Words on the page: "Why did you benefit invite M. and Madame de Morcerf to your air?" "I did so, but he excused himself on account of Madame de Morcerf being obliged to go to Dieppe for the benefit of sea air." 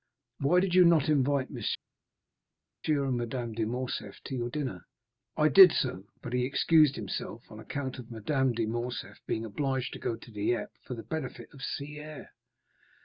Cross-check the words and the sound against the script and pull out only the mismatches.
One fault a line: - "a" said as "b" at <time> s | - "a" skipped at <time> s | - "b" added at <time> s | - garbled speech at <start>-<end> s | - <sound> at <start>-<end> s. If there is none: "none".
- "benefit" said as "not" at 0.9 s
- "air" said as "dinner" at 4.5 s